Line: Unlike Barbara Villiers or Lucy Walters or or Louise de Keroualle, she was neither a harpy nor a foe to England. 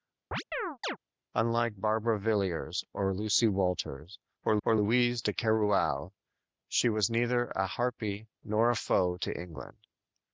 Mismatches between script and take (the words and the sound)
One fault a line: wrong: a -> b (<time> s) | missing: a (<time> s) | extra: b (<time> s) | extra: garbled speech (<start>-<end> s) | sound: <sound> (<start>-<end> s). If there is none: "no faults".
sound: chirp (0.3-1.0 s)